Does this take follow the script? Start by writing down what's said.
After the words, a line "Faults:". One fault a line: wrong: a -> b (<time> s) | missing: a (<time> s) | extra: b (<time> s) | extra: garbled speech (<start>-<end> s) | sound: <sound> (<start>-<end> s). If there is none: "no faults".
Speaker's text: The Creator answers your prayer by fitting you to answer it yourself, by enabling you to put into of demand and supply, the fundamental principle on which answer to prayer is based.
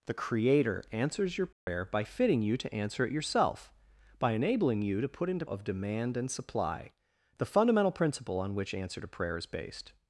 The Creator answers your prayer by fitting you to answer it yourself, by enabling you to put into of demand and supply, the fundamental principle on which answer to prayer is based.
Faults:
sound: dropout (1.5-1.7 s)